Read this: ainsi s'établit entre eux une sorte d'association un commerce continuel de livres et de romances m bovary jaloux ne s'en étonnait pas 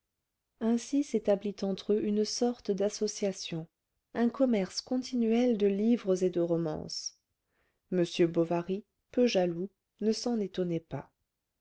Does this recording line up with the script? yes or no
no